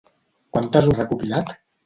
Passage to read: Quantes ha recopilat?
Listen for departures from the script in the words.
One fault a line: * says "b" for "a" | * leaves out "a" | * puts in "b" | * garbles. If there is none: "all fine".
all fine